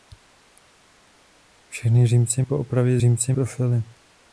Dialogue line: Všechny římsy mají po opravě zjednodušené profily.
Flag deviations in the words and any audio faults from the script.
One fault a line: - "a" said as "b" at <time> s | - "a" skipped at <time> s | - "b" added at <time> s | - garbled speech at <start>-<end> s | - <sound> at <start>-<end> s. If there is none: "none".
- "mají" skipped at 2.4 s
- "zjednodušené" said as "římsy" at 3.0 s